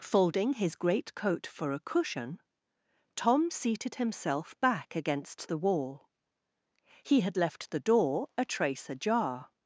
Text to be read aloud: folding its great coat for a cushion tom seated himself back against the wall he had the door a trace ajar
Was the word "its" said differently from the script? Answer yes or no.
yes